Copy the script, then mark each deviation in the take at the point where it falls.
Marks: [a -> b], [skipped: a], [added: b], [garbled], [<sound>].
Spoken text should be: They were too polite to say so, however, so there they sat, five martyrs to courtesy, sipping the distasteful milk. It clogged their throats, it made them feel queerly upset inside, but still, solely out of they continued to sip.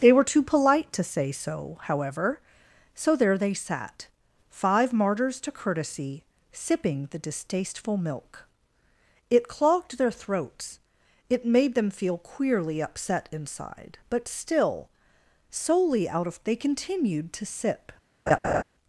They were too polite to say so, however, so there they sat, five martyrs to courtesy, sipping the distasteful milk. It clogged their throats, it made them feel queerly upset inside, but still, solely out of they continued to sip. [laugh]